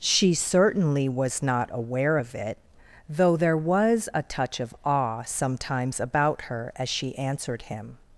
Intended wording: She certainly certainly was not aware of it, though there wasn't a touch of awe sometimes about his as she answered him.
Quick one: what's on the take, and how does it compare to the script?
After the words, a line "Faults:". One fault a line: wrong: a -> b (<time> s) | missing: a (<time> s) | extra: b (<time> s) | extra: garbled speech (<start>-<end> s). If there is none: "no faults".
She certainly was not aware of it, though there was a touch of awe sometimes about her as she answered him.
Faults:
missing: certainly (1.1 s)
wrong: wasn't -> was (3.6 s)
wrong: his -> her (6.4 s)